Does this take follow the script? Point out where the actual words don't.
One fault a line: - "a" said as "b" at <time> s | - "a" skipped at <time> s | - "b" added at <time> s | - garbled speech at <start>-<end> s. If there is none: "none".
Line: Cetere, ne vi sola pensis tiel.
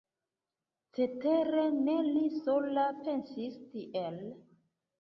- "vi" said as "li" at 2.1 s